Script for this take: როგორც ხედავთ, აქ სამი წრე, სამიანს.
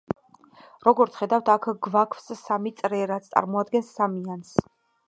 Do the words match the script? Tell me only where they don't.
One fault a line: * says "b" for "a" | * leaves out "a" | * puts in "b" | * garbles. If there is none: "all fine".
* puts in "გვაქვს"
* puts in "რაც წარმოადგენს"